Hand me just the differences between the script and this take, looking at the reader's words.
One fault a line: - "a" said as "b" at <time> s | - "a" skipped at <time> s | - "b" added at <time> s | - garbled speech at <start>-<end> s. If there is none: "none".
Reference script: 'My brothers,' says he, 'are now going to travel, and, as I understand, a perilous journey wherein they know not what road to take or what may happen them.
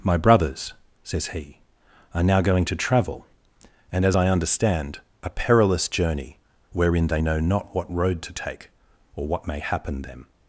none